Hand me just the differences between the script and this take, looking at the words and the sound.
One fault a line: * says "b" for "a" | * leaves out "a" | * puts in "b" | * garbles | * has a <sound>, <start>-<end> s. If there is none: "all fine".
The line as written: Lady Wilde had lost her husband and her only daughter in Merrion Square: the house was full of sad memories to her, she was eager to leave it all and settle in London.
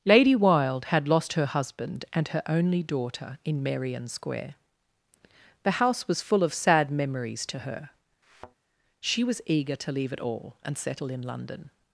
* has a thud, 8.2-8.6 s